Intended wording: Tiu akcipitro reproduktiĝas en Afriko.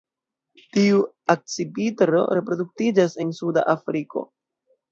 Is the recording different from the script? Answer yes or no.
yes